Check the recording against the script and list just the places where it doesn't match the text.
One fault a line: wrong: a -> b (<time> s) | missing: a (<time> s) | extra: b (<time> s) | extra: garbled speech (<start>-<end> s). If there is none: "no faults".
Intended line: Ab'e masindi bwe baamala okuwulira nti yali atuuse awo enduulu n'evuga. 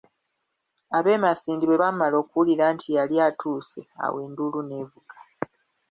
no faults